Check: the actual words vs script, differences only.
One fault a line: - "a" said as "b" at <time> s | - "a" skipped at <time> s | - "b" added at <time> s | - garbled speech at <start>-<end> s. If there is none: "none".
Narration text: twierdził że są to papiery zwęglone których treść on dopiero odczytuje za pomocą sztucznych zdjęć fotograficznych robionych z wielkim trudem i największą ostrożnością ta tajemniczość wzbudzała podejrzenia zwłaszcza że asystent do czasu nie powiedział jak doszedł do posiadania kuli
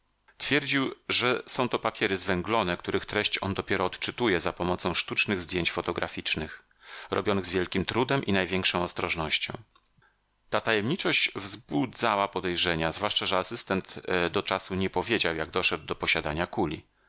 none